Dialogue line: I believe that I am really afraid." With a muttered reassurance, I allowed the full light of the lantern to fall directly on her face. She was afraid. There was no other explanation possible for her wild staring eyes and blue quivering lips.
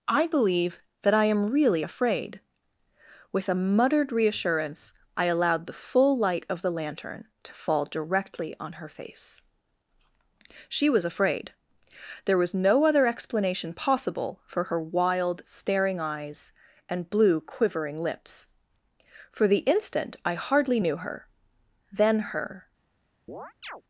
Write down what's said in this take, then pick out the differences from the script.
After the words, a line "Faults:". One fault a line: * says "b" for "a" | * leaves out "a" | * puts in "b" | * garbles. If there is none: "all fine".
I believe that I am really afraid." With a muttered reassurance, I allowed the full light of the lantern to fall directly on her face. She was afraid. There was no other explanation possible for her wild staring eyes and blue quivering lips. For the instant I hardly knew her; then her
Faults:
* puts in "For the instant I hardly knew her then her"